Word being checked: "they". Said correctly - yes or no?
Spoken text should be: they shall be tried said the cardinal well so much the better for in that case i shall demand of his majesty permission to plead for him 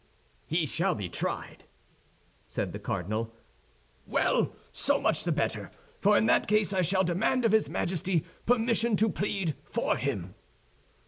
no